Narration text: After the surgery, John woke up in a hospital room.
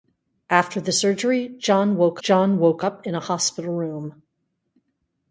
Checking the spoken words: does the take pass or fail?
fail